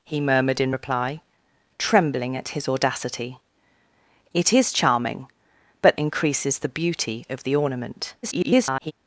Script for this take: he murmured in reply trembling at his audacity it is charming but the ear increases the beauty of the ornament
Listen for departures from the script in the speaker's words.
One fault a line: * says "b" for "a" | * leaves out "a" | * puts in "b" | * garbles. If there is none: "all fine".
* leaves out "the ear"
* garbles